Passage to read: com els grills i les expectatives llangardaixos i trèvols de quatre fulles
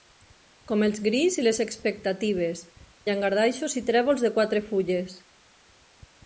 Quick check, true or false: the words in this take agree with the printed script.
true